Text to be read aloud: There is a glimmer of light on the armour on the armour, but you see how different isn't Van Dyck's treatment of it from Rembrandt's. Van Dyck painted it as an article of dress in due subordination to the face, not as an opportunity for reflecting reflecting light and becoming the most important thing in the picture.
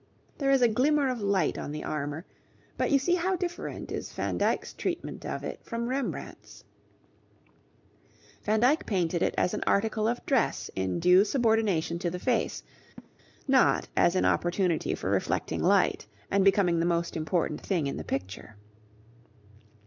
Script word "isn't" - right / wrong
wrong